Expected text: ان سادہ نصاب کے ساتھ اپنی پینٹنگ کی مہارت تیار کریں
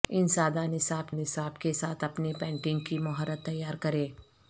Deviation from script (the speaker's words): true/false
true